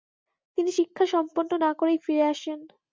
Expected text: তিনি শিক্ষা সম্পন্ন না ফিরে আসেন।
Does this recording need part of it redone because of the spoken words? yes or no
yes